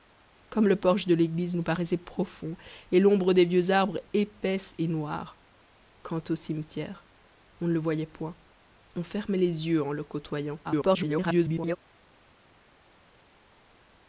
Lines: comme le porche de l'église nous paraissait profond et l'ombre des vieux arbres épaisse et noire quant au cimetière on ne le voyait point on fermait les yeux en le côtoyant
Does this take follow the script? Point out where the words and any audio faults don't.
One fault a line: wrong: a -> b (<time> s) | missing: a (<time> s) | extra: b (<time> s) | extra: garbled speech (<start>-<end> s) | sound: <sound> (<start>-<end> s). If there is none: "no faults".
extra: garbled speech (10.6-11.8 s)